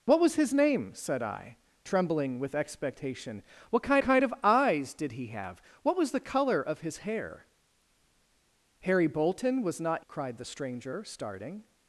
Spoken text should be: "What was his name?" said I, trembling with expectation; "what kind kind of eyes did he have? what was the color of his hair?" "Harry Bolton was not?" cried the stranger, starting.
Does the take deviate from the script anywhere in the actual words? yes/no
no